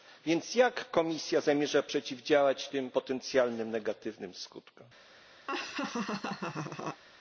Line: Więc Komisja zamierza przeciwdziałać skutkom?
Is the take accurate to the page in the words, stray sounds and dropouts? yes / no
no